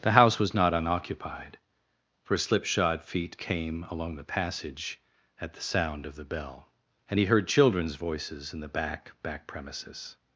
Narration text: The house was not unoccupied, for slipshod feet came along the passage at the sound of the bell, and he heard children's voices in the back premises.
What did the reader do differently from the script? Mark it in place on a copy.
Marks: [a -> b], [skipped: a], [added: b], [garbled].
The house was not unoccupied, for slipshod feet came along the passage at the sound of the bell, and he heard children's voices in the back [added: back] premises.